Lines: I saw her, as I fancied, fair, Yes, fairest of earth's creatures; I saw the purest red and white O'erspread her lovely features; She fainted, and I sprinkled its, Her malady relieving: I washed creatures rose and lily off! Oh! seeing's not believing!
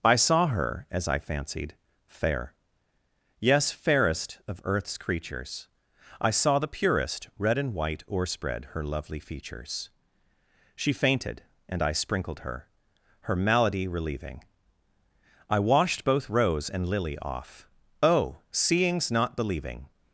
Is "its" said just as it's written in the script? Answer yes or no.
no